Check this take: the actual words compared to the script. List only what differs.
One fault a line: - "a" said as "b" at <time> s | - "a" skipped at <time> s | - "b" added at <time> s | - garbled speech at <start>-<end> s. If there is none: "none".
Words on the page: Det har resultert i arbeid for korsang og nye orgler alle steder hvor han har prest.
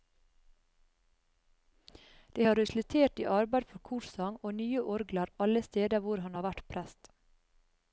- "vært" added at 6.5 s